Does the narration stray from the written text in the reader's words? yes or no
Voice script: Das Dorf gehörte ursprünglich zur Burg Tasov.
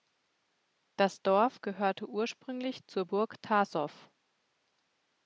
no